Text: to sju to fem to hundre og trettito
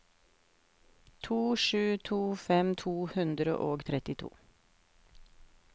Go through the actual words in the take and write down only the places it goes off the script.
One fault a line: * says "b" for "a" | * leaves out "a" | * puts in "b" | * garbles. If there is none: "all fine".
all fine